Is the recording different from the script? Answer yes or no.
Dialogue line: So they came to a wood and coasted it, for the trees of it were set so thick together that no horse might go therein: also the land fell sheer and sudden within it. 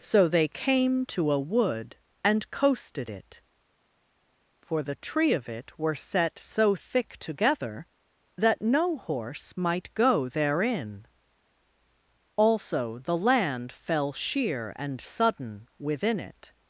yes